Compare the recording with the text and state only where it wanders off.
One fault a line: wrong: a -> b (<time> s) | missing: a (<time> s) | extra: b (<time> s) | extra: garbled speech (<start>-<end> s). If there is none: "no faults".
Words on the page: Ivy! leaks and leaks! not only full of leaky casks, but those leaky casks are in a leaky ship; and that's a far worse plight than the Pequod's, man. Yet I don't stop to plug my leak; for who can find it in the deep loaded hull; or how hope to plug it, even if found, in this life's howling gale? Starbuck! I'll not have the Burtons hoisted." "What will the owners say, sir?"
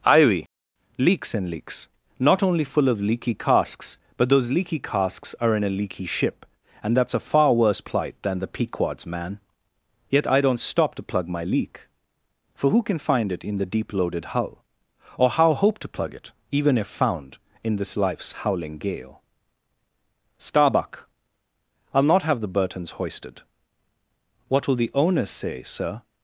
no faults